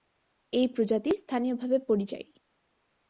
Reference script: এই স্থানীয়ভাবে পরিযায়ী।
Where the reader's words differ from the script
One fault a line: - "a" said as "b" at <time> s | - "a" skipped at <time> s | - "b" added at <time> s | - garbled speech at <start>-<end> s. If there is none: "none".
- "প্রজাতি" added at 0.7 s